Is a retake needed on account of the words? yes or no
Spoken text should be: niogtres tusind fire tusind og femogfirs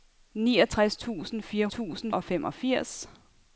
no